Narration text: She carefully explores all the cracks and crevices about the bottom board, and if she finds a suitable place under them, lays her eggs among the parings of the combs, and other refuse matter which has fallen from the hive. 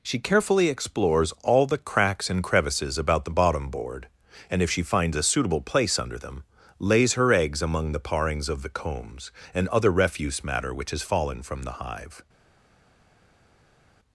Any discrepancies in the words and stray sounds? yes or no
no